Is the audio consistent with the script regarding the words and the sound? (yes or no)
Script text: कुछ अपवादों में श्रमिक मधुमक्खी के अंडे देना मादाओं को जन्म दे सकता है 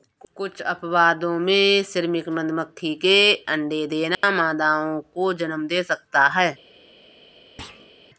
no